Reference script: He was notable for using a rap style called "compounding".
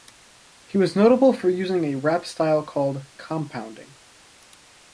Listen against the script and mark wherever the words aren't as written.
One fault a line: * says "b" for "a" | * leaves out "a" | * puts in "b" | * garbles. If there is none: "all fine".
all fine